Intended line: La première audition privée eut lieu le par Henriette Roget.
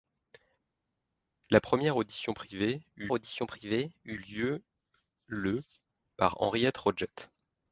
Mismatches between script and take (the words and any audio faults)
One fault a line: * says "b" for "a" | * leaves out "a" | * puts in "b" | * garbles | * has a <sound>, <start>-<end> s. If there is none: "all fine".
* puts in "audition privée eut"